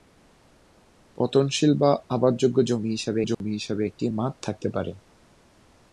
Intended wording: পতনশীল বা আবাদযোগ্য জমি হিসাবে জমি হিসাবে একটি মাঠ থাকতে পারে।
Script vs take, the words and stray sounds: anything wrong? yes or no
yes